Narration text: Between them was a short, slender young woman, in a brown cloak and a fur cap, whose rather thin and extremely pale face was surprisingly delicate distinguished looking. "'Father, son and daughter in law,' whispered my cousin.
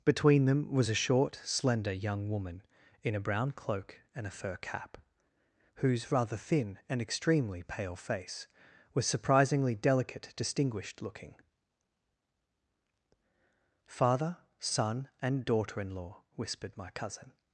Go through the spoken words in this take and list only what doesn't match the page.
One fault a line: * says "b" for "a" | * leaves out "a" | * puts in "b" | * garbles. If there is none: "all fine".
all fine